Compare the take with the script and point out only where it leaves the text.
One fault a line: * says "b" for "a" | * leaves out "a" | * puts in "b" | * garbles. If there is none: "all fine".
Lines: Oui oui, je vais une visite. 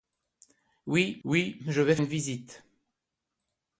all fine